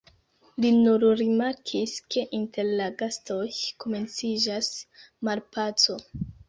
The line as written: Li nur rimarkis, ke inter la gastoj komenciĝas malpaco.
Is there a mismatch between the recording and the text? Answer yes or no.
no